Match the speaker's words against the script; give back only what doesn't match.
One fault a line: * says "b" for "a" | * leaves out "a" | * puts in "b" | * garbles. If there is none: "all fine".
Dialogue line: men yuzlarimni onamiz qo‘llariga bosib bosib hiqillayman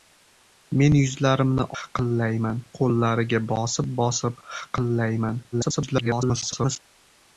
* says "hiqillayman" for "onamiz"
* garbles